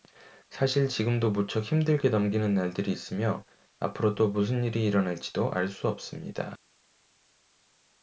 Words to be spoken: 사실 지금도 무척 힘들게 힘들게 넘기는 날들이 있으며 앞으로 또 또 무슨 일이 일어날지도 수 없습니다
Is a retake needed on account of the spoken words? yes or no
yes